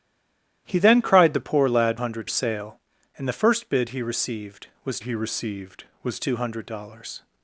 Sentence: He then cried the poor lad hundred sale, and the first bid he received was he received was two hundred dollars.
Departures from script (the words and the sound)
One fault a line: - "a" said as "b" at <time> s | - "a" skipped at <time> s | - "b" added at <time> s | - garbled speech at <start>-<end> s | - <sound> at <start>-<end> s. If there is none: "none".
none